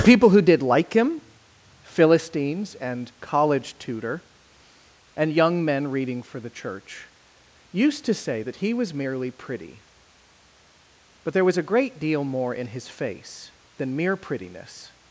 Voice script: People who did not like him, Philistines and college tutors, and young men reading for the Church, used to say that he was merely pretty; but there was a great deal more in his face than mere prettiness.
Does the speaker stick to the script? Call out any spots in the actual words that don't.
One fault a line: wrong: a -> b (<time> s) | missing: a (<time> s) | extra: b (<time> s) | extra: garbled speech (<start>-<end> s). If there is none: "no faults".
missing: not (0.6 s)
wrong: tutors -> tutor (3.8 s)